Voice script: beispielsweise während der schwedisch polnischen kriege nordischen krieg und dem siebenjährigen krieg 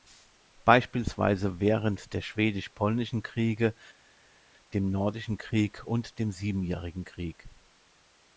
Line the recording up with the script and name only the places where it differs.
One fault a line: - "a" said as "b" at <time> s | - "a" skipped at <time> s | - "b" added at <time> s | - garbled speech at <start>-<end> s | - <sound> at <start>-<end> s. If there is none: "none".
- "dem" added at 4.7 s